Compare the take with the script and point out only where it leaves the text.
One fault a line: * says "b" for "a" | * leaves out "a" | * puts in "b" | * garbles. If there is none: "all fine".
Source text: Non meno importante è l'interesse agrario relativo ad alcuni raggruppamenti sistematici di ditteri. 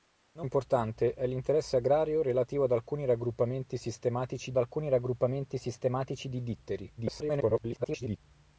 * leaves out "meno"
* puts in "alcuni raggruppamenti sistematici"
* garbles